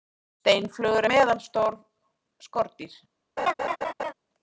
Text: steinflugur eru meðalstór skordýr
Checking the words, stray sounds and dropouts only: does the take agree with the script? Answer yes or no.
no